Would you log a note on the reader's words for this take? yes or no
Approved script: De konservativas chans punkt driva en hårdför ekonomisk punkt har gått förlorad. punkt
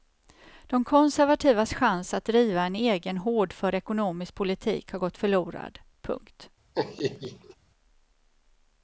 yes